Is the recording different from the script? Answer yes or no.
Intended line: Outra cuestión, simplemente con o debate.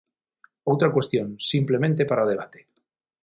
yes